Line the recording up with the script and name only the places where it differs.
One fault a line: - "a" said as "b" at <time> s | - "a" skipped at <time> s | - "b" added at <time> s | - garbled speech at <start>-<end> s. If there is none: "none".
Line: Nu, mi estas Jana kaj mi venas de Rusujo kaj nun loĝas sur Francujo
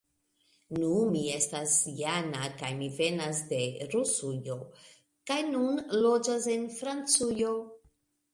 - "sur" said as "en" at 6.6 s